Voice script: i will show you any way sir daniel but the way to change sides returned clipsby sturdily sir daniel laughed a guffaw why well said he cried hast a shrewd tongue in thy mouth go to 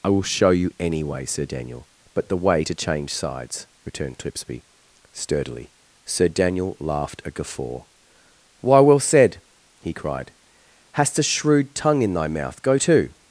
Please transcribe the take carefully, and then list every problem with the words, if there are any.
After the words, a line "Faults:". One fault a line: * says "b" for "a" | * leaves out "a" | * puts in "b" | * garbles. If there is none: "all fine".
i will show you any way sir daniel but the way to change sides returned clipsby sturdily sir daniel laughed a guffaw why well said he cried hast a shrewd tongue in thy mouth go to
Faults:
all fine